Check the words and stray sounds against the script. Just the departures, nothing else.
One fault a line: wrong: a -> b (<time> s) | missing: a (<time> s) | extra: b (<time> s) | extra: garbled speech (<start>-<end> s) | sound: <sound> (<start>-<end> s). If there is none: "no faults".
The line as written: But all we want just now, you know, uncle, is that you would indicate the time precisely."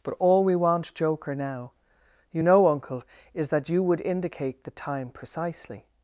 wrong: just -> joker (0.9 s)